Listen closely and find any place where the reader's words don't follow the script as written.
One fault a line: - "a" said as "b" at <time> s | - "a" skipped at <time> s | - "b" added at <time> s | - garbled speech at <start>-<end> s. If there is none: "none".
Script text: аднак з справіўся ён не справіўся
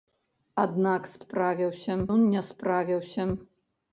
none